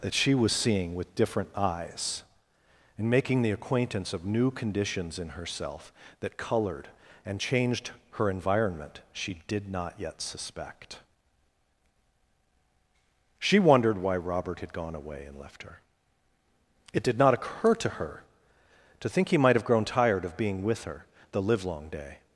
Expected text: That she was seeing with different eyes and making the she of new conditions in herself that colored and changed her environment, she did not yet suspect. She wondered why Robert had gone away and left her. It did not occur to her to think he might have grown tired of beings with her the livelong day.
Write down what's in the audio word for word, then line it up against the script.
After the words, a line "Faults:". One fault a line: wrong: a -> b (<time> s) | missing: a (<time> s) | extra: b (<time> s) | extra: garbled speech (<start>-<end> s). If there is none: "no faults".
That she was seeing with different eyes and making the acquaintance of new conditions in herself that colored and changed her environment, she did not yet suspect. She wondered why Robert had gone away and left her. It did not occur to her to think he might have grown tired of being with her the livelong day.
Faults:
wrong: she -> acquaintance (3.5 s)
wrong: beings -> being (20.4 s)